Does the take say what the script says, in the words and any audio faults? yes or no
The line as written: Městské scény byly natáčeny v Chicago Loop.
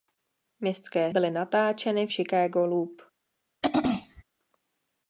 no